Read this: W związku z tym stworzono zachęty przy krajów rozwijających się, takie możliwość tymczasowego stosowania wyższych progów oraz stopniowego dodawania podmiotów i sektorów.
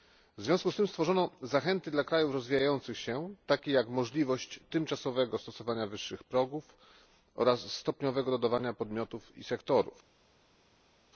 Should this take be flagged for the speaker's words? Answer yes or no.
yes